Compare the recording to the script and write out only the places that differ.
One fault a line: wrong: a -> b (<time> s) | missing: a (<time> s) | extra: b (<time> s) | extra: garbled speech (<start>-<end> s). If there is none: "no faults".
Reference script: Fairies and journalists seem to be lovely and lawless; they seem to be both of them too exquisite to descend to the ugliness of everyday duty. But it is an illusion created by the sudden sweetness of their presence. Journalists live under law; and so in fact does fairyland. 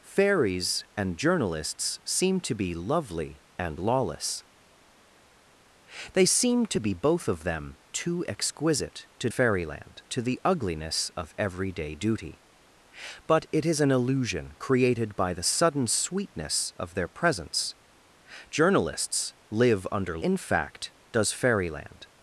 wrong: descend -> fairyland (9.3 s)
missing: law and so (20.2 s)